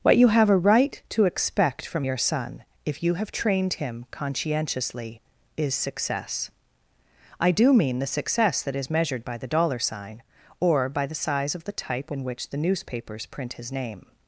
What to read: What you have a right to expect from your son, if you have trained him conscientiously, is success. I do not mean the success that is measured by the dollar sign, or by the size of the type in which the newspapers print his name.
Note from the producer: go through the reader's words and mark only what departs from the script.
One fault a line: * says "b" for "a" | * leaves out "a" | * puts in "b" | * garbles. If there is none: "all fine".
* leaves out "not"